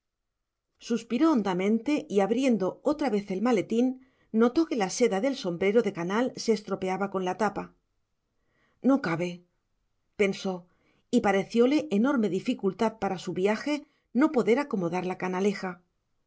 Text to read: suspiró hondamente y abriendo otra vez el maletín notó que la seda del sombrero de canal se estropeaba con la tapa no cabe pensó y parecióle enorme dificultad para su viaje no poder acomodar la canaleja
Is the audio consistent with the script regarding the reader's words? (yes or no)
yes